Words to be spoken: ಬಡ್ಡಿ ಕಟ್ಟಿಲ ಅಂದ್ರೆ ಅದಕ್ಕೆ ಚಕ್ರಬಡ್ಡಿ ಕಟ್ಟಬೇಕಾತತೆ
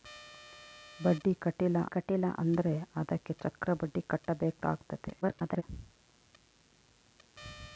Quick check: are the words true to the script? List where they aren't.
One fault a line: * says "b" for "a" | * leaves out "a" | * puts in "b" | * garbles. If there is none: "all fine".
* puts in "ಕಟ್ಟಿಲ"
* garbles